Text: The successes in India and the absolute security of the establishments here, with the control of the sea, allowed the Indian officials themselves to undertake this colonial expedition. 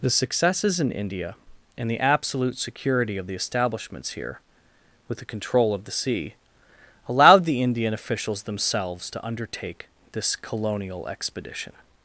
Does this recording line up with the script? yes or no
yes